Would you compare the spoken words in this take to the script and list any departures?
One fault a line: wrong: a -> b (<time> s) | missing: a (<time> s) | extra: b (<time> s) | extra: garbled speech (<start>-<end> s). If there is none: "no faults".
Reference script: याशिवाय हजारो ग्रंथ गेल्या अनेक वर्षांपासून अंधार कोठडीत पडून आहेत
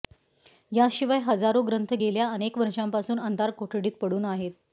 no faults